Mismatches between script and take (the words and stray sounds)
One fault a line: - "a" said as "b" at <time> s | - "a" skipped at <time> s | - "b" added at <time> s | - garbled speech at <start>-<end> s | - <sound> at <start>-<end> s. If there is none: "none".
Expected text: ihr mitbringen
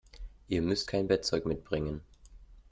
- "müsst kein bettzeug" added at 0.6 s